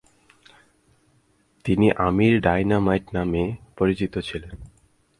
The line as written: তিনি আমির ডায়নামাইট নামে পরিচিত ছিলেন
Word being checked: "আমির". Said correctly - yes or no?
yes